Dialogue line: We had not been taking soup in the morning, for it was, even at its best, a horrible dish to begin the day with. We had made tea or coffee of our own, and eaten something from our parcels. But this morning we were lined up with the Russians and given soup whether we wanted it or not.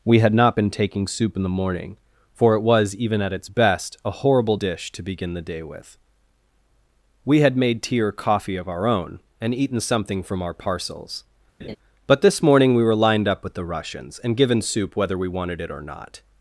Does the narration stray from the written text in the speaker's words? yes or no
no